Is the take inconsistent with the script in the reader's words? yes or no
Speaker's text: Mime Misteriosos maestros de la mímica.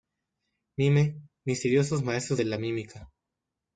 no